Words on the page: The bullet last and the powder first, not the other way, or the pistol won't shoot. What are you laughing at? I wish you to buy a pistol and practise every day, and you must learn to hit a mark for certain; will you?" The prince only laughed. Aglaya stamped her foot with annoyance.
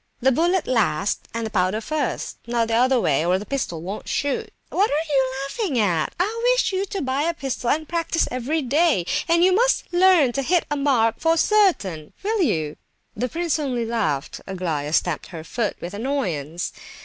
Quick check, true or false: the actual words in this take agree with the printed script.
true